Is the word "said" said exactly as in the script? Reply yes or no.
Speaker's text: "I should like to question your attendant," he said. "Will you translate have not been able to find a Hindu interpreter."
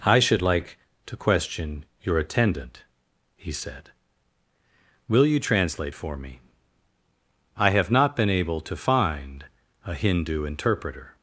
yes